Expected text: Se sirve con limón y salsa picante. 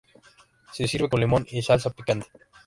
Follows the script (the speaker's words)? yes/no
yes